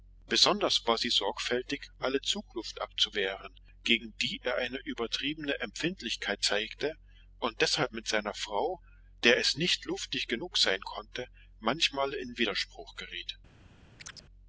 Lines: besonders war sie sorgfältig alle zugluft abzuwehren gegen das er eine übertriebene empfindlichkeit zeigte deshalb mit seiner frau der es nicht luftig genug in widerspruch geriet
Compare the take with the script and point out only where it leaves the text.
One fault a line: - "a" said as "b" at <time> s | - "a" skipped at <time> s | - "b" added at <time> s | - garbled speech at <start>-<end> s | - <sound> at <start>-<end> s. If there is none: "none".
- "das" said as "die" at 4.2 s
- "und" added at 7.4 s
- "sein konnte manchmal" added at 10.6 s
- chirp at 14.0-14.2 s